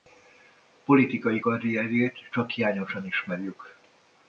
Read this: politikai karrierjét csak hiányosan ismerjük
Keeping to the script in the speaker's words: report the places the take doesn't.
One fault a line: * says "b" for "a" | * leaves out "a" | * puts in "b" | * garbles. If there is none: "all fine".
all fine